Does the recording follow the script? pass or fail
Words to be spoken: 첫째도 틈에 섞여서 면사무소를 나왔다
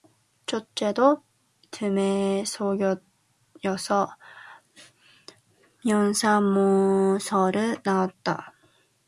pass